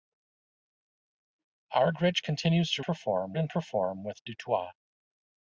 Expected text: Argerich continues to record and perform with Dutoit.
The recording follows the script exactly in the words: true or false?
false